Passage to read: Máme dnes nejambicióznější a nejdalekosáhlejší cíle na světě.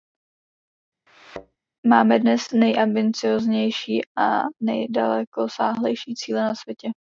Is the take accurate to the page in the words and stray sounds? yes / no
no